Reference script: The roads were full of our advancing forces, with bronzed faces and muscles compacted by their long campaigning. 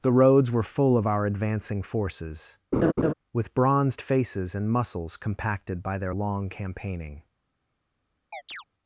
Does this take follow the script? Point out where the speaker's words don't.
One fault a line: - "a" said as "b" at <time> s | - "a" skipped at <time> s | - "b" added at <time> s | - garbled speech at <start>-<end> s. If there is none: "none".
none